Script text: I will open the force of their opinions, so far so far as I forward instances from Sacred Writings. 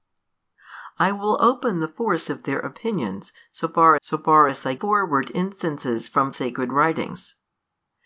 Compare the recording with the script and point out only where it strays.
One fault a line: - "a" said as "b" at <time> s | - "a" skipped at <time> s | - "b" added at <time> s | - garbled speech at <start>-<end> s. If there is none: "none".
none